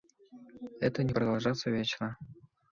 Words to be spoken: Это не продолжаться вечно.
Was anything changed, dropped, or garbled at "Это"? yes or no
no